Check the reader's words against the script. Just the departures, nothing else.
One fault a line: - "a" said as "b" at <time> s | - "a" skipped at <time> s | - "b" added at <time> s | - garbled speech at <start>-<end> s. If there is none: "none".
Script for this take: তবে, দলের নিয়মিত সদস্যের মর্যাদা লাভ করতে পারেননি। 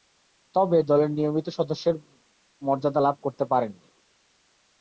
none